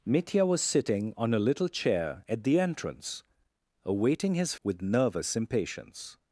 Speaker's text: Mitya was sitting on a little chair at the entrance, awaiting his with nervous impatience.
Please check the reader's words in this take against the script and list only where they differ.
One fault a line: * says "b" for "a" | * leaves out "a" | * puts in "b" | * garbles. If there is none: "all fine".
all fine